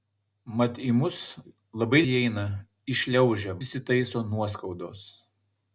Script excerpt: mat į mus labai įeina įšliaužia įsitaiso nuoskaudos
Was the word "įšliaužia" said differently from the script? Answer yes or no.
no